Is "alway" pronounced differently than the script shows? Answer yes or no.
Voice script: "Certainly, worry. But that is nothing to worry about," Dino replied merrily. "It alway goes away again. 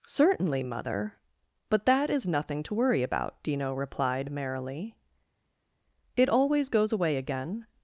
yes